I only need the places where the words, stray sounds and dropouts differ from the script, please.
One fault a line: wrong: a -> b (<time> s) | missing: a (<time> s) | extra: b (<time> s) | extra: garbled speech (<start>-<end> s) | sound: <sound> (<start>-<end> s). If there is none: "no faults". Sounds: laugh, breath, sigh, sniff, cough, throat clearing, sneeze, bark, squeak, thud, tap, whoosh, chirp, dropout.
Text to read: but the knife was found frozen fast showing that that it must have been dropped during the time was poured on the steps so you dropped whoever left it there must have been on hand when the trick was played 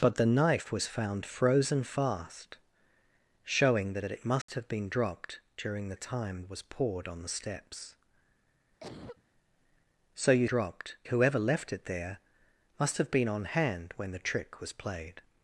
sound: dropout (4.4-4.5 s)
sound: cough (8.8-9.2 s)